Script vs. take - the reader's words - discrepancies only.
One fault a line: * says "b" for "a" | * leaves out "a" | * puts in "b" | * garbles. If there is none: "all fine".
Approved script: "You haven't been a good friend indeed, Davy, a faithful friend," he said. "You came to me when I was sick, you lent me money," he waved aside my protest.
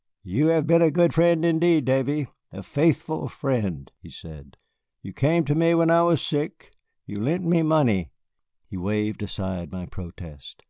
* says "have" for "haven't"